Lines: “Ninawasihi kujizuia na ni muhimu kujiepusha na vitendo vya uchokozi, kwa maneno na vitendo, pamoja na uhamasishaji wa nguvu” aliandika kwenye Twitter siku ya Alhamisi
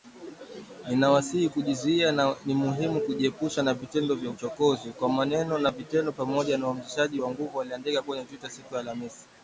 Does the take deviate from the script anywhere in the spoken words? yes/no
no